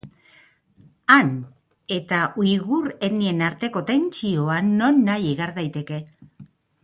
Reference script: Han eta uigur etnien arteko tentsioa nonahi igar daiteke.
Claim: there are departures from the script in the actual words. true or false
false